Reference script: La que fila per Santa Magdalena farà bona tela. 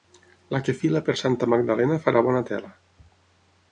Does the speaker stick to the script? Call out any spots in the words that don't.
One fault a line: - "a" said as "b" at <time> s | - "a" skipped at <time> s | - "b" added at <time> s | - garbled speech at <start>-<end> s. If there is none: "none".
none